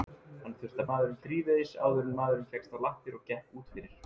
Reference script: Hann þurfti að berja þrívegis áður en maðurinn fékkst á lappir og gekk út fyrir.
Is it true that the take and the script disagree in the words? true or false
true